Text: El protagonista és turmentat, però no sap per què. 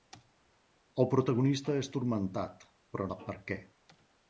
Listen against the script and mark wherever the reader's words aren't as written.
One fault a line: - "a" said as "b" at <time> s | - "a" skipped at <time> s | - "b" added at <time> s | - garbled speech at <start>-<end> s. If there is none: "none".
- "no" skipped at 3.1 s